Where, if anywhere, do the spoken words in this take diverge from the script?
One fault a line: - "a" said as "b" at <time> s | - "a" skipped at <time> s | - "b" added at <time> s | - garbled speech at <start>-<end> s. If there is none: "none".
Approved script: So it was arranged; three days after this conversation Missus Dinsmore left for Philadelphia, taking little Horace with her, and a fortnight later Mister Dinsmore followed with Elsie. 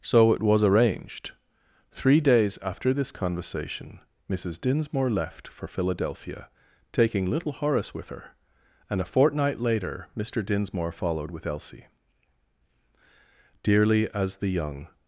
- "Dearly as the young" added at 13.6 s